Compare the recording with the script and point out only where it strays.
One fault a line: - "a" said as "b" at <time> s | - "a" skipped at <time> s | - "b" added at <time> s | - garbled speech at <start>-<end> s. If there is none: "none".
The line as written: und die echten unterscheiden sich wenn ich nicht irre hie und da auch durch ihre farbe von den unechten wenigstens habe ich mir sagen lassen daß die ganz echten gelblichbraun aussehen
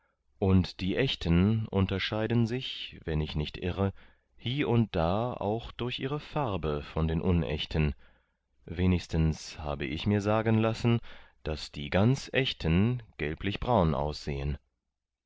none